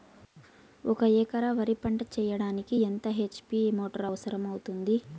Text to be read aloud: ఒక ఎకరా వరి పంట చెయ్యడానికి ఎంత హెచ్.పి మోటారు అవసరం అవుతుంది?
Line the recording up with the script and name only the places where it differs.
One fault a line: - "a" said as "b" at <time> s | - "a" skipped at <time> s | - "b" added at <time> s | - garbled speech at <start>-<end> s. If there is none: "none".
none